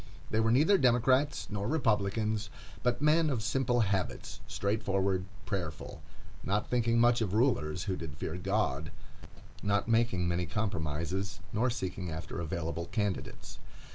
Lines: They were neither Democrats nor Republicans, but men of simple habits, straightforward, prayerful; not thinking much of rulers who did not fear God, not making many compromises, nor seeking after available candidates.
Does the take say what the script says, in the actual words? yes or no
no